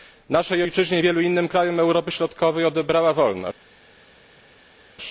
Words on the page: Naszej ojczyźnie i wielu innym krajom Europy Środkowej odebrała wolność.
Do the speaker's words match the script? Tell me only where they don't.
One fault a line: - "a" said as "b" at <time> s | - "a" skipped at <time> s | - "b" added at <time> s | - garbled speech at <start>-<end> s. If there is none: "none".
none